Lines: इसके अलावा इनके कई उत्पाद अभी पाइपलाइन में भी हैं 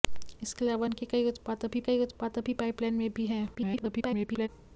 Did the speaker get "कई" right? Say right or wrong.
right